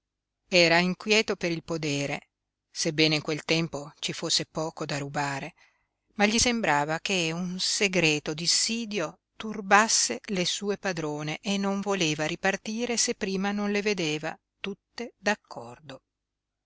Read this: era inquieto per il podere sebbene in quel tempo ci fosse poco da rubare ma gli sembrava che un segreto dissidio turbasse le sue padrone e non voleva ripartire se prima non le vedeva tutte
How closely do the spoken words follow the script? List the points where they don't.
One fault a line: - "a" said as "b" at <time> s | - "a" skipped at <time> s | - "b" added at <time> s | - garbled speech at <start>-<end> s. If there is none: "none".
none